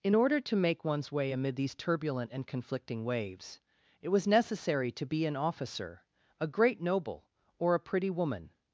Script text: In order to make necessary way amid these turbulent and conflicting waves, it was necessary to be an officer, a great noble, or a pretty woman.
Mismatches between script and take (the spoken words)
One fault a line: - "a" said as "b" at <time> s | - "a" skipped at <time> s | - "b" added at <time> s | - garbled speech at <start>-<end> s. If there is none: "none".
- "necessary" said as "one's" at 0.8 s